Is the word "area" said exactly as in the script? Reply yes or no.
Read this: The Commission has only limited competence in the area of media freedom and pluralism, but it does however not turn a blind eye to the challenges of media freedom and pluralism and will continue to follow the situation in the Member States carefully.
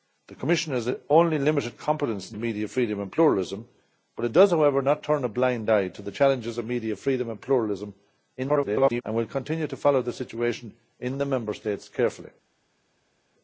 no